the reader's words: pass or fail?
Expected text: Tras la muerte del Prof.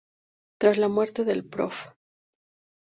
pass